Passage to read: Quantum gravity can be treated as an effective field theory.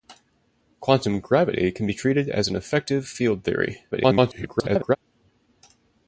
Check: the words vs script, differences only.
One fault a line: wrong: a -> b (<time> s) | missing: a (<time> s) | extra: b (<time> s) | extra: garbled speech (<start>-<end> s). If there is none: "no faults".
extra: garbled speech (3.9-5.0 s)